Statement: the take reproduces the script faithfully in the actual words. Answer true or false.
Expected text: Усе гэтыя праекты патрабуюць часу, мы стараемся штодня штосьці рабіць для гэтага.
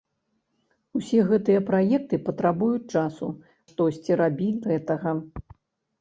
false